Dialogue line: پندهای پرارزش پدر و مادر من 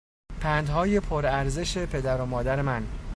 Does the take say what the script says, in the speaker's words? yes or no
yes